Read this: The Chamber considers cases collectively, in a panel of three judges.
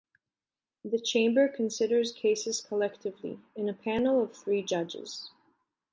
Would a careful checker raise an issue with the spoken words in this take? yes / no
no